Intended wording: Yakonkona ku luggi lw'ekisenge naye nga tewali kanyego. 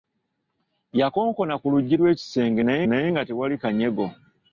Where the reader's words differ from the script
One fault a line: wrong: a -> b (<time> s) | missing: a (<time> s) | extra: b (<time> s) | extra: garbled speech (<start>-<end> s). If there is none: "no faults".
extra: naye (2.9 s)